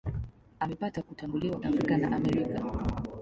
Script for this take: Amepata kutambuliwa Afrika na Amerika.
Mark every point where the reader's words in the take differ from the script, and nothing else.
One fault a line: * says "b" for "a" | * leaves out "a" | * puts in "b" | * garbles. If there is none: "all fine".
all fine